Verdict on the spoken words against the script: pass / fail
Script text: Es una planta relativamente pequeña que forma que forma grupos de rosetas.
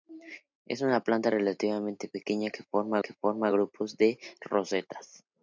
pass